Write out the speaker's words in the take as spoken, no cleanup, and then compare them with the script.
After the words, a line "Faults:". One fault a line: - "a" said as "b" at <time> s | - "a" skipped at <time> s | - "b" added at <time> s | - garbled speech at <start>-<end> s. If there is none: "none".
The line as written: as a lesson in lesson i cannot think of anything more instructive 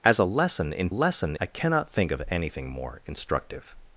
as a lesson in lesson i cannot think of anything more instructive
Faults:
none